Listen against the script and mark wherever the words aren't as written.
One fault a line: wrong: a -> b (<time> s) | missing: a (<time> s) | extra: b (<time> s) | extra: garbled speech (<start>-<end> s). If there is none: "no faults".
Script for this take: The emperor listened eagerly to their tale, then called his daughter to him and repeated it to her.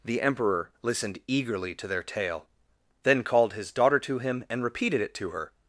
no faults